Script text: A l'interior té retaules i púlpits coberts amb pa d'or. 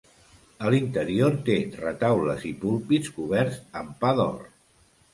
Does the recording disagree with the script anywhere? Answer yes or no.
no